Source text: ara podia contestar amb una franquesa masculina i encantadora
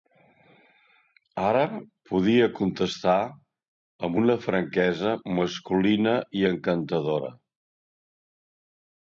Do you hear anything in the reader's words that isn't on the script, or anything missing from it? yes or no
no